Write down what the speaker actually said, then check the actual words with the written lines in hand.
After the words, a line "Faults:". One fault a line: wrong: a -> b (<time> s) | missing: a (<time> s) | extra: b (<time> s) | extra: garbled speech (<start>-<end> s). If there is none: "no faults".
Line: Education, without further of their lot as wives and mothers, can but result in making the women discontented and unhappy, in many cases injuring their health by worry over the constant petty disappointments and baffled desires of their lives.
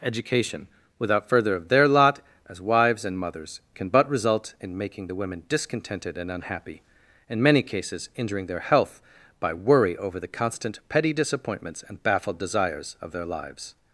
Education, without further of their lot as wives and mothers, can but result in making the women discontented and unhappy, in many cases injuring their health by worry over the constant petty disappointments and baffled desires of their lives.
Faults:
no faults